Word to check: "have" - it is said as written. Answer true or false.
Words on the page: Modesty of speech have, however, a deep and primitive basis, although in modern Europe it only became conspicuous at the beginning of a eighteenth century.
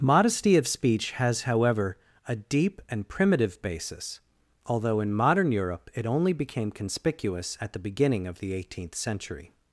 false